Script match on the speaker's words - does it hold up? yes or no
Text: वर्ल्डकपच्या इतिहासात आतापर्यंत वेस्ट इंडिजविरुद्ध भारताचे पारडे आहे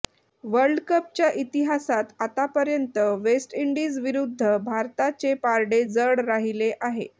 no